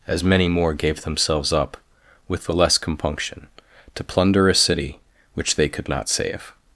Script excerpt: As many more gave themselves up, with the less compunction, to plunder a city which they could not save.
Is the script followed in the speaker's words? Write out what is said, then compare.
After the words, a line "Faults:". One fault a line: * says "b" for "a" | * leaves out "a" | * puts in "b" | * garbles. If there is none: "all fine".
As many more gave themselves up, with the less compunction, to plunder a city which they could not save.
Faults:
all fine